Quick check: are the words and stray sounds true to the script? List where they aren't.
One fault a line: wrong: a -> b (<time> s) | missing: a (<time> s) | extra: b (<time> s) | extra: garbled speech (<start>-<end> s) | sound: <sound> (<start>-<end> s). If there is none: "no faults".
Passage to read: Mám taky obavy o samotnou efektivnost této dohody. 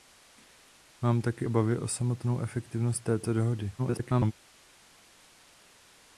extra: garbled speech (3.8-4.3 s)